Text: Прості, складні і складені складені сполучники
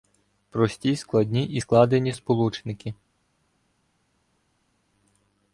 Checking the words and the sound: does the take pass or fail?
fail